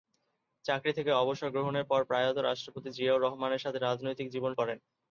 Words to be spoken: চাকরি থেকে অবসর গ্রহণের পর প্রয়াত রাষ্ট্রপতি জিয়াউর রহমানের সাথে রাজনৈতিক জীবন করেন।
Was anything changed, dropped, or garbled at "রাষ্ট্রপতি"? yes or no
no